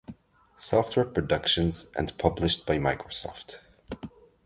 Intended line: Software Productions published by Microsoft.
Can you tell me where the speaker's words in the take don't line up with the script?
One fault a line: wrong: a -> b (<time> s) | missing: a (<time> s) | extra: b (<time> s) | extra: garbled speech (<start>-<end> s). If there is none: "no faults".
extra: and (2.0 s)